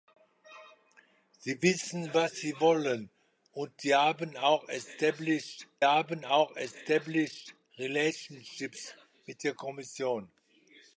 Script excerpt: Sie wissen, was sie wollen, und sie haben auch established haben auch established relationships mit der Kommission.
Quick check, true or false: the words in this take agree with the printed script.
true